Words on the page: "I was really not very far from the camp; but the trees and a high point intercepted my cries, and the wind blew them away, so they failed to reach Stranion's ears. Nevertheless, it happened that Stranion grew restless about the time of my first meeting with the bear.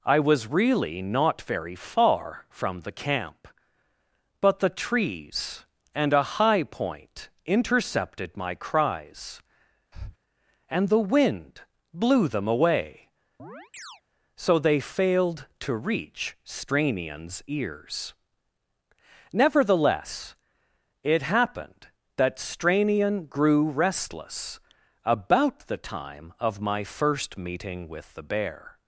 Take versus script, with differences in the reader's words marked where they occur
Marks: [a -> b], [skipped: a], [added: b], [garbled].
"I was really not very far from the camp; but the trees and a high point intercepted my cries, and the wind blew them away, so they failed to reach Stranion's ears. Nevertheless, it happened that Stranion grew restless about the time of my first meeting with the bear.